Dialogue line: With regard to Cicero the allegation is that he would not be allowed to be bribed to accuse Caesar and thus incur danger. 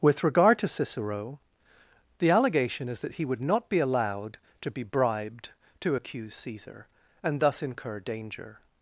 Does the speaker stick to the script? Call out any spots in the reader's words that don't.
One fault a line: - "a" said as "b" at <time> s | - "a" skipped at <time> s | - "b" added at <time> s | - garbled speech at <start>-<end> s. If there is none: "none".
none